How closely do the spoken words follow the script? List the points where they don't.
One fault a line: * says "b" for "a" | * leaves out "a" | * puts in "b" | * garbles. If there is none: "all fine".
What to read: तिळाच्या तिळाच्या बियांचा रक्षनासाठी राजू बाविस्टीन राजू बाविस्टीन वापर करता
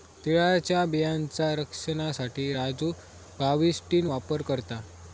* leaves out "तिळाच्या"
* leaves out "राजू बाविस्टीन"